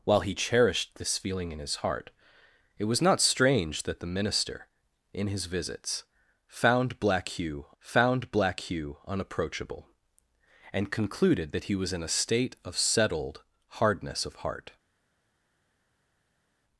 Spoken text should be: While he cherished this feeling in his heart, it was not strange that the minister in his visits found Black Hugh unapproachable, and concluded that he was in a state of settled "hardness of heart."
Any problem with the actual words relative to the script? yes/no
yes